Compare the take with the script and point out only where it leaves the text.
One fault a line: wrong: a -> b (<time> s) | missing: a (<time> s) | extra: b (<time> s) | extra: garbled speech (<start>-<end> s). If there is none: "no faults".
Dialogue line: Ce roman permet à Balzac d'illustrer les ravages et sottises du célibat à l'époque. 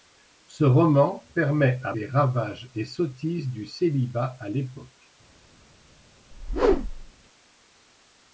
missing: Balzac d'illustrer (1.9 s)